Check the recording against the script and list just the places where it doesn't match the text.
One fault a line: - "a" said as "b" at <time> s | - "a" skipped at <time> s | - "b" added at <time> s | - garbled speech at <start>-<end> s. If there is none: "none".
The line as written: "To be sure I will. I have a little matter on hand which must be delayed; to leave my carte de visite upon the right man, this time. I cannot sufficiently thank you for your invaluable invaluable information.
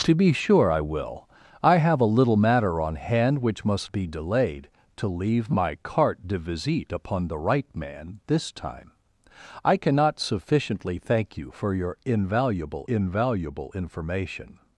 none